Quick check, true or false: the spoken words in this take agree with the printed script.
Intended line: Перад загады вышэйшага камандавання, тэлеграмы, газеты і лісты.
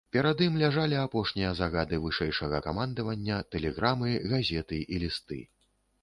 false